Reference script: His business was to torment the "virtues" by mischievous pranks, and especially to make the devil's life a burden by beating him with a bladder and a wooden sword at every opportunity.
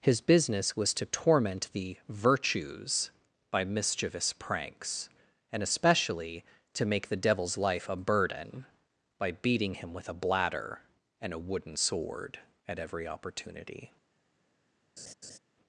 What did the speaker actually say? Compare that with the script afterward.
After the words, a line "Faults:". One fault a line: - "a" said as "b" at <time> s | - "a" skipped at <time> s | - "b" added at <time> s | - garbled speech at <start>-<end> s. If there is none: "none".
His business was to torment the "virtues" by mischievous pranks, and especially to make the devil's life a burden by beating him with a bladder and a wooden sword at every opportunity.
Faults:
none